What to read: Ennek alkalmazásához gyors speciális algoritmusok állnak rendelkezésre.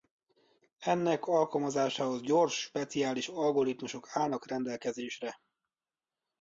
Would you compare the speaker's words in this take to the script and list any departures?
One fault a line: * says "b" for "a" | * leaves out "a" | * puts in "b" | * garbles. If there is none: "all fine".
all fine